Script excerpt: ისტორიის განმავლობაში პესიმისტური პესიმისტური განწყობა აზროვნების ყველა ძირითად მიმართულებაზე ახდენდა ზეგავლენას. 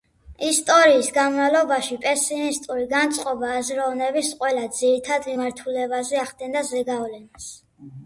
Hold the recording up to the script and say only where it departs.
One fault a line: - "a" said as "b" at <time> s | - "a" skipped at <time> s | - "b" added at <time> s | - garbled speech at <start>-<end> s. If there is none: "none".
- "პესიმისტური" skipped at 2.9 s